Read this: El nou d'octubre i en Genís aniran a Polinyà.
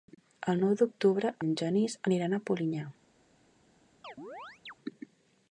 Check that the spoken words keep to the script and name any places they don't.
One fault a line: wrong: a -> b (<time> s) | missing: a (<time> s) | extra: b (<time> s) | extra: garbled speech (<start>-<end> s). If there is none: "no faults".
no faults